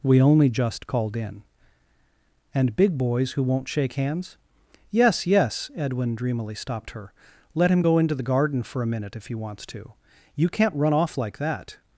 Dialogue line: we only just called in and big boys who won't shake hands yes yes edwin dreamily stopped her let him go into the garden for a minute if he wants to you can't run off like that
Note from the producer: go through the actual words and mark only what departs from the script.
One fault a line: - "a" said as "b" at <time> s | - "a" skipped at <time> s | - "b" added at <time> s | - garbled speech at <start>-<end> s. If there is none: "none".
none